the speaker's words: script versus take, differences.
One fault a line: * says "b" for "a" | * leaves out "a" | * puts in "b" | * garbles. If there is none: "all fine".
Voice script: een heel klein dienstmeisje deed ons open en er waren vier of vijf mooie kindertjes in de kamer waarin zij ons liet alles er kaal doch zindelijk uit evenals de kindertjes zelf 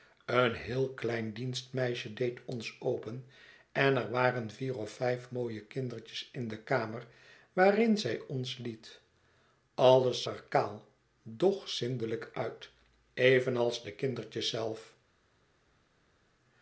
all fine